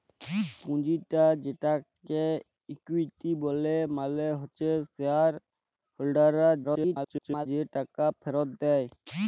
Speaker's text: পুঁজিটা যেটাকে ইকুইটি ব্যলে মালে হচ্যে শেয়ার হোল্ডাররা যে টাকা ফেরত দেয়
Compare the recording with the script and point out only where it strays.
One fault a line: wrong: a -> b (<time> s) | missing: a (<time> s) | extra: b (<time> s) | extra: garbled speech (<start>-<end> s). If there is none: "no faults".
extra: garbled speech (6.6-7.5 s)